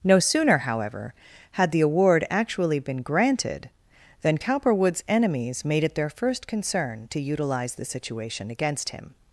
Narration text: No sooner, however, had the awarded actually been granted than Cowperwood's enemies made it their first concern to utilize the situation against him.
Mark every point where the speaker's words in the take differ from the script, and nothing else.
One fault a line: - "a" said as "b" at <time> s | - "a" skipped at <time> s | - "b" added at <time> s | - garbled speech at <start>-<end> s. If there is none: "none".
- "awarded" said as "award" at 1.8 s